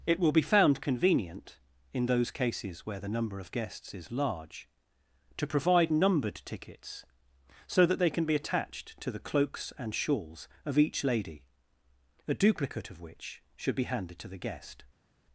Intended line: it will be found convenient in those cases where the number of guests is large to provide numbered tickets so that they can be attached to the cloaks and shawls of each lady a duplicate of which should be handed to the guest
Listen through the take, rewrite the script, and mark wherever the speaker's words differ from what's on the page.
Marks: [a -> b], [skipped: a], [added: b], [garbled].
it will be found convenient in those cases where the number of guests is large to provide numbered tickets so that they can be attached to the cloaks and shawls of each lady a duplicate of which should be handed to the guest